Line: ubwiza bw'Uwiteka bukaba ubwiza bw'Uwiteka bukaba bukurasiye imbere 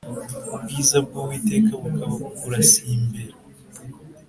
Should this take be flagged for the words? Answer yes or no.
yes